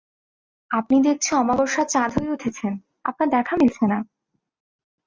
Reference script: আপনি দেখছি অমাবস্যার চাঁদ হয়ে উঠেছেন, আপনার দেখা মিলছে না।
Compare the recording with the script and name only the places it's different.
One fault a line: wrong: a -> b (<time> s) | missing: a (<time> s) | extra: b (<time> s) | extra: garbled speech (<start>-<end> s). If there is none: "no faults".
no faults